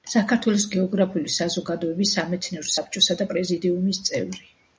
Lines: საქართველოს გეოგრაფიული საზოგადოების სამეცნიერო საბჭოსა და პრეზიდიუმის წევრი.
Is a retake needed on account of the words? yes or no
no